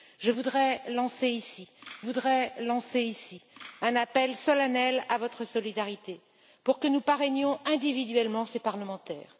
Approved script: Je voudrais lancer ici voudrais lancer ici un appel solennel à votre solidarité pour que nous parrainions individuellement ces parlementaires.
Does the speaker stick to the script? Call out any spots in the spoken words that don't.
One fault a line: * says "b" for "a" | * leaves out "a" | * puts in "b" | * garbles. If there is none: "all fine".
all fine